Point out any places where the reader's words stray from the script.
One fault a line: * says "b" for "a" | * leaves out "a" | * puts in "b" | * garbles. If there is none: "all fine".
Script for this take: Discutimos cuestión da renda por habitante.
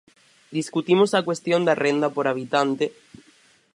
* puts in "a"